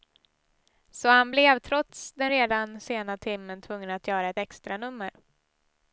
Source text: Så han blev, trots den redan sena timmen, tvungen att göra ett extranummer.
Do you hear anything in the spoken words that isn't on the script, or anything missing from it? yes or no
no